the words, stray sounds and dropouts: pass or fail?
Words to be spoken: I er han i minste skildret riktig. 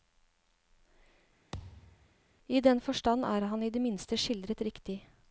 fail